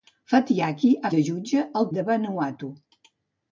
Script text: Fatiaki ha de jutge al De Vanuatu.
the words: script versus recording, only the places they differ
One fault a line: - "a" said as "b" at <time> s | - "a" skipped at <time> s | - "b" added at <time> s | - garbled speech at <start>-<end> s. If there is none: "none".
none